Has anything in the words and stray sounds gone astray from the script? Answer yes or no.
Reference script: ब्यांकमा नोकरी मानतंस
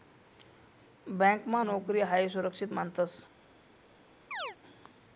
yes